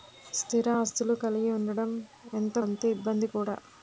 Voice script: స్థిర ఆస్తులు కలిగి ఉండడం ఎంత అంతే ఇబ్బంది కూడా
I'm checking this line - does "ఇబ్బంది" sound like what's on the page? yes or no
yes